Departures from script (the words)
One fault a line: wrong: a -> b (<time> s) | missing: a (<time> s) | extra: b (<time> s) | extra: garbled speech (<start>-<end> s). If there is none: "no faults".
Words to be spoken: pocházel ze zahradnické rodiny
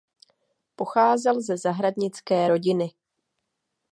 no faults